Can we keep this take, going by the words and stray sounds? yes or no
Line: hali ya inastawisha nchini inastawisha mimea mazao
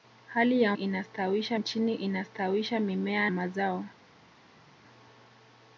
yes